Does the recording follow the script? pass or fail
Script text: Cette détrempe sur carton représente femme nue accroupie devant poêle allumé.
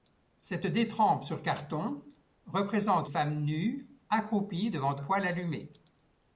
pass